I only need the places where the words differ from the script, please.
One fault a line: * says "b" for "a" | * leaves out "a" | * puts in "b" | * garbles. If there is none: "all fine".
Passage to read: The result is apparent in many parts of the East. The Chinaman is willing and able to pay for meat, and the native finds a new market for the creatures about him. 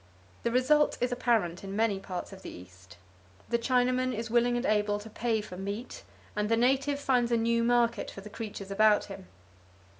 all fine